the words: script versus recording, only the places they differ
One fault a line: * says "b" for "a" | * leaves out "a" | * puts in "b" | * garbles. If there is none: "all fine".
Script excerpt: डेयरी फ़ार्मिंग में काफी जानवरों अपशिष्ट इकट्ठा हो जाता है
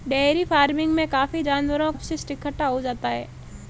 all fine